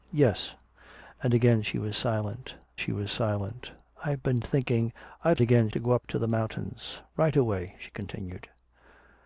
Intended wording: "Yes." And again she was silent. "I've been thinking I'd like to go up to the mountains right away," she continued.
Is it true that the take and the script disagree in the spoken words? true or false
true